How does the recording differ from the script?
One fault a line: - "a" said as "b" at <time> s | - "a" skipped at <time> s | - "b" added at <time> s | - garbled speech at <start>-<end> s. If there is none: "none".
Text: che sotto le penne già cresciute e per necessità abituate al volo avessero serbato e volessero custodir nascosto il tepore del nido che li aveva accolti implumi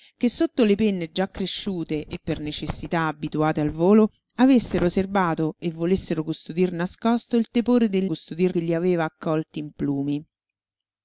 - "nido" said as "custodir" at 8.0 s